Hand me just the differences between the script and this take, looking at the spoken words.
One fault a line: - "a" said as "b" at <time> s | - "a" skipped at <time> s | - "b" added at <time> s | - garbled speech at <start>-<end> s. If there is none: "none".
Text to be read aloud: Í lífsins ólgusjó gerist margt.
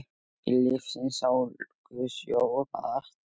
- "gerist" skipped at 2.4 s